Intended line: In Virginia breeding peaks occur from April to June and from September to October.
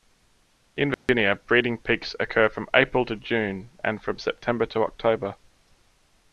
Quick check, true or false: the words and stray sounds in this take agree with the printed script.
false